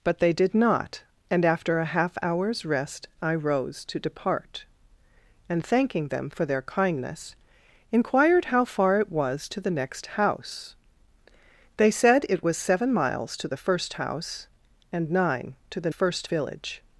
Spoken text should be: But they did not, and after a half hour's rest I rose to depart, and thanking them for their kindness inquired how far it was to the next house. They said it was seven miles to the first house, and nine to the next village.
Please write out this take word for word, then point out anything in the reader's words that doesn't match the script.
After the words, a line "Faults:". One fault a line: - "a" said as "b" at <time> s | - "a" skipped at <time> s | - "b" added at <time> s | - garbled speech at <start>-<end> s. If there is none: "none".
But they did not, and after a half hour's rest I rose to depart, and thanking them for their kindness inquired how far it was to the next house. They said it was seven miles to the first house, and nine to the first village.
Faults:
- "next" said as "first" at 15.9 s